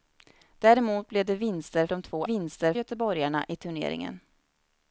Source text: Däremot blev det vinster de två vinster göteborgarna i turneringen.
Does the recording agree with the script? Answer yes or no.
yes